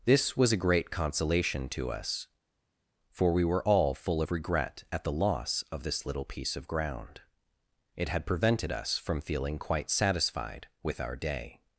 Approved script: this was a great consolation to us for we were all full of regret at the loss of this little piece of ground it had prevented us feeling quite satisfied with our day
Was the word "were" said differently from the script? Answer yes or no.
no